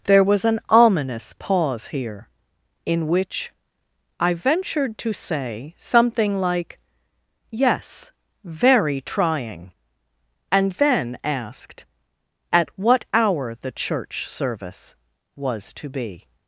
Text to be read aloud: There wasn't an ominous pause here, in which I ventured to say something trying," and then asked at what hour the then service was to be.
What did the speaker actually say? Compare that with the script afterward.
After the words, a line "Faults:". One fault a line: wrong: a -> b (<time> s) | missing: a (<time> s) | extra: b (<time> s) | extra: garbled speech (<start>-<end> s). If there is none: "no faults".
There was an ominous pause here, in which I ventured to say something like, "Yes, very trying," and then asked at what hour the church service was to be.
Faults:
wrong: wasn't -> was (0.2 s)
extra: like Yes very (6.4 s)
wrong: then -> church (13.7 s)